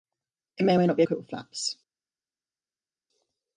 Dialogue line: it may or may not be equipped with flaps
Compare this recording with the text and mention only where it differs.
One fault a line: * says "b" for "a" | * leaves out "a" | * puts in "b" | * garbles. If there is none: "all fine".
all fine